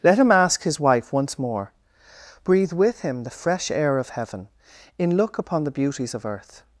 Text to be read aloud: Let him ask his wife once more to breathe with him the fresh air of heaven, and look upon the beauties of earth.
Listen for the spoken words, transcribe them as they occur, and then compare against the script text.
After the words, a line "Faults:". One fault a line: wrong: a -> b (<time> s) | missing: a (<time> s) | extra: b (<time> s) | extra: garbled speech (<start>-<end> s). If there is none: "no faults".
Let him ask his wife once more breathe with him the fresh air of heaven, in look upon the beauties of earth.
Faults:
missing: to (1.7 s)
wrong: and -> in (5.0 s)